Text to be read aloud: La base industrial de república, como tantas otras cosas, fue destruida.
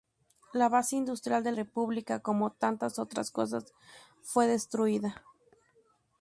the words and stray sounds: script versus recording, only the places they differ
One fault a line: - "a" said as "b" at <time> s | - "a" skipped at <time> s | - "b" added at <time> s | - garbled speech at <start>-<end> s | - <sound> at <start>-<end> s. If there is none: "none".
none